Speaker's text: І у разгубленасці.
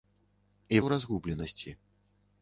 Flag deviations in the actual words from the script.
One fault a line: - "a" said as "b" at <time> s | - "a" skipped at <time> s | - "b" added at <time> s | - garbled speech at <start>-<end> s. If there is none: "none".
none